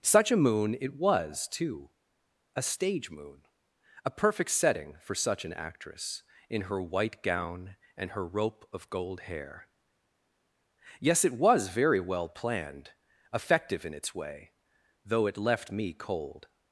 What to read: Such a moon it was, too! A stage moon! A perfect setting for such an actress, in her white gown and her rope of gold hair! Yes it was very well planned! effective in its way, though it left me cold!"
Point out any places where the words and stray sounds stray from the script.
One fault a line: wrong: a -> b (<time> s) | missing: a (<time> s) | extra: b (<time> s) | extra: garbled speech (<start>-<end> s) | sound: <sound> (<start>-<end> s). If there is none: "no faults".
no faults